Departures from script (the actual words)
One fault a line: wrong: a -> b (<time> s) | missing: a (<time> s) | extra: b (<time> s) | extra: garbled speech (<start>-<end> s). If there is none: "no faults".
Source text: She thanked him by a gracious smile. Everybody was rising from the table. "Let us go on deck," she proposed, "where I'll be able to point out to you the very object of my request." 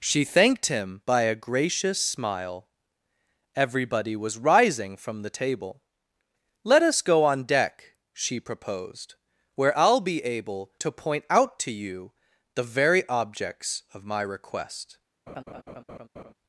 wrong: object -> objects (13.1 s)